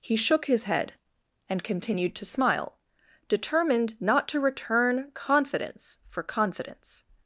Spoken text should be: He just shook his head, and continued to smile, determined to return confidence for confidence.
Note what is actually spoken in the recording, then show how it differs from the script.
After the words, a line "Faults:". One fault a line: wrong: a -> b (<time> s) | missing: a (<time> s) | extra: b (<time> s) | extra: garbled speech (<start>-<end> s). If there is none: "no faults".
He shook his head, and continued to smile, determined not to return confidence for confidence.
Faults:
missing: just (0.1 s)
extra: not (4.0 s)